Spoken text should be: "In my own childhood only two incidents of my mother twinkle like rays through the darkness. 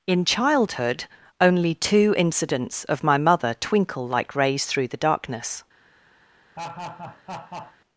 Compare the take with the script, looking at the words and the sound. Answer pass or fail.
fail